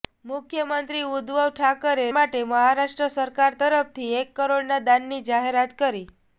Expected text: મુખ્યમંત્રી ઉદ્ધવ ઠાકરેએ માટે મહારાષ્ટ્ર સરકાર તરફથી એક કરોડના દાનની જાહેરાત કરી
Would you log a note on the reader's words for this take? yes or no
no